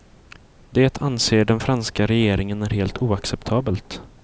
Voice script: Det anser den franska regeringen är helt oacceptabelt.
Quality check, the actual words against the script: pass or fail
pass